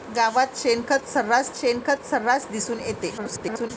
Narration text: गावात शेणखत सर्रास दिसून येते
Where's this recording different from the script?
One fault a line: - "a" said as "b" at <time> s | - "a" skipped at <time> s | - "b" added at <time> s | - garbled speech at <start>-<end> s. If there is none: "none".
- "शेणखत सर्रास" added at 1.6 s
- garbled speech at 3.2-3.7 s